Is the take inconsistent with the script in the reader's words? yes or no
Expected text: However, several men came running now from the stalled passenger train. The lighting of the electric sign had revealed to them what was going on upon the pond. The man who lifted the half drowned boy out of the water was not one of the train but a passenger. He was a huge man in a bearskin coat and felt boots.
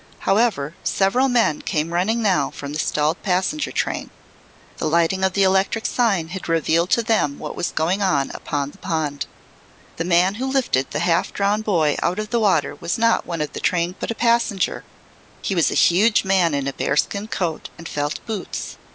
no